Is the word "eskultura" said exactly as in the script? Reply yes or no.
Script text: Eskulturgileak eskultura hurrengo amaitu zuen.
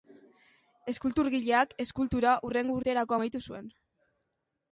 yes